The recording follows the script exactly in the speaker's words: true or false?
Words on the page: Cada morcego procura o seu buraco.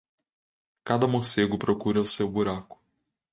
true